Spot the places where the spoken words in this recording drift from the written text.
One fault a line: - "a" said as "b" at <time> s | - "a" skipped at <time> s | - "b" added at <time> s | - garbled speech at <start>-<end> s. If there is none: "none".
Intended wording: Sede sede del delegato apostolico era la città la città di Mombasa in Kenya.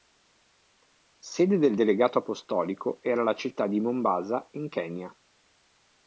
- "sede" skipped at 1.6 s
- "la città" skipped at 3.7 s